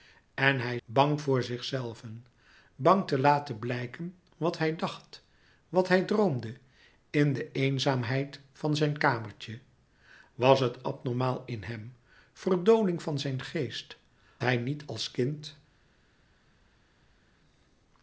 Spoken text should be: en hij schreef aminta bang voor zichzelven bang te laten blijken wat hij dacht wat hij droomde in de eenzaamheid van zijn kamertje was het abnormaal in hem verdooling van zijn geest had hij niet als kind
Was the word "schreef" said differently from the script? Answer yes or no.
yes